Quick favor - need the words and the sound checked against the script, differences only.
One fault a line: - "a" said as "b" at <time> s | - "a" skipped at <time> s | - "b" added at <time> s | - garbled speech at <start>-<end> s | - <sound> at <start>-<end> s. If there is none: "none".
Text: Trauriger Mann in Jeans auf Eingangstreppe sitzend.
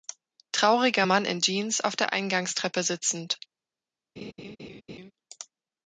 - "der" added at 2.0 s
- laugh at 4.2-5.1 s